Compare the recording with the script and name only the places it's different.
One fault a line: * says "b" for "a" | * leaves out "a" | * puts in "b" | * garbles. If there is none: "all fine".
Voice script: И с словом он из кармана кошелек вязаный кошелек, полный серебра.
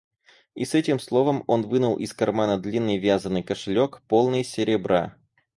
* puts in "этим"
* puts in "вынул"
* says "длинный" for "кошелек"